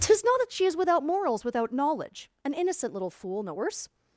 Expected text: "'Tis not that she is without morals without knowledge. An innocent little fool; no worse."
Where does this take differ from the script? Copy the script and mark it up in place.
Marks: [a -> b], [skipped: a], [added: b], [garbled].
"'Tis not that she is without morals without knowledge. An innocent little fool; no worse."